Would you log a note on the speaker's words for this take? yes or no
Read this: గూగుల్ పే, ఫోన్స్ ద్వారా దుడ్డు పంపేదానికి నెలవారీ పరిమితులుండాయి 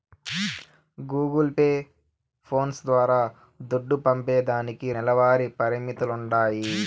no